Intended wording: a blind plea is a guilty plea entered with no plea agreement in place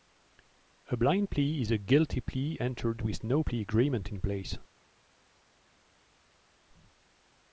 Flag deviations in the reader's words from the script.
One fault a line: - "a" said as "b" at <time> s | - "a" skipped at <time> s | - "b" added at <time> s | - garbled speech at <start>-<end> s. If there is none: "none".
none